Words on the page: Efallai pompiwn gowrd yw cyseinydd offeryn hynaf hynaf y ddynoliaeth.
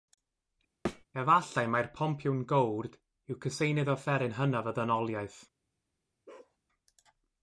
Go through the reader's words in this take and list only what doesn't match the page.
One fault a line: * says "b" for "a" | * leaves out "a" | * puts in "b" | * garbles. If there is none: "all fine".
* puts in "mai'r"
* leaves out "hynaf"